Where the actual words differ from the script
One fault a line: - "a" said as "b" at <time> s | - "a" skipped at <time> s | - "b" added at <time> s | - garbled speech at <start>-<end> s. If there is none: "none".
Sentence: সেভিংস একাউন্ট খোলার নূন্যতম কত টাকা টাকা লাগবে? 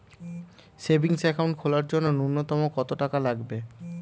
- "জন্য" added at 1.9 s
- "টাকা" skipped at 3.2 s